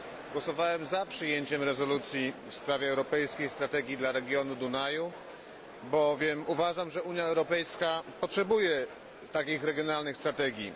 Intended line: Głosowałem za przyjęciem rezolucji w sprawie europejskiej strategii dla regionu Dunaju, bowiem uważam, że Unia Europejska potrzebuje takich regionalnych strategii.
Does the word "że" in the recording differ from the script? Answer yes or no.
no